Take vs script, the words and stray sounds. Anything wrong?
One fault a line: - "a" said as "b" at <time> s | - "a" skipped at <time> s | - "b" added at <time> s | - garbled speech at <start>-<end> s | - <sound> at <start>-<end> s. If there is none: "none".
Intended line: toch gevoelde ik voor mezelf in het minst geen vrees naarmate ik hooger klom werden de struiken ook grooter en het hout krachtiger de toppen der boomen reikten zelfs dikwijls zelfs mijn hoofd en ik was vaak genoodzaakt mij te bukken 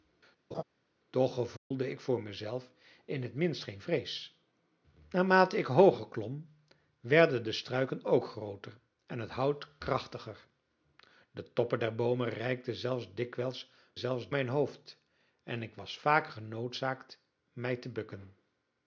- laugh at 0.5-0.6 s
- dropout at 1.6-1.7 s